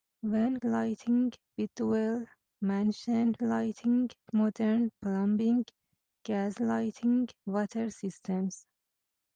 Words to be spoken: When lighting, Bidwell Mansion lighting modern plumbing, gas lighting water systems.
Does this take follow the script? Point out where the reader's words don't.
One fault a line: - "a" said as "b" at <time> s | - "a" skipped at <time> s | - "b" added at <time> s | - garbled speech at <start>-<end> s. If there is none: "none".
none